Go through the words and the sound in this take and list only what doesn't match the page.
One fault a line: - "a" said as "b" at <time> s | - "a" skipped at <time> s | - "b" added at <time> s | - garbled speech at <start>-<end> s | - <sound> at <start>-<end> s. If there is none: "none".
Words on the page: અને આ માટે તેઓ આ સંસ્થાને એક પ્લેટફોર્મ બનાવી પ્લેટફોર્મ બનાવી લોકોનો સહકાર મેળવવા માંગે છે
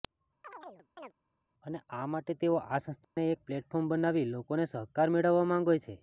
- chirp at 0.4-1.1 s
- dropout at 3.0-3.2 s
- "પ્લેટફોર્મ બનાવી" skipped at 4.3 s